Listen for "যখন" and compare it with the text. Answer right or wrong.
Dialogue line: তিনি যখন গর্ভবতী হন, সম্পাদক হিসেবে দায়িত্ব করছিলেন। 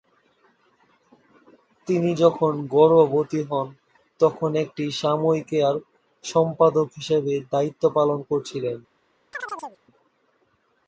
right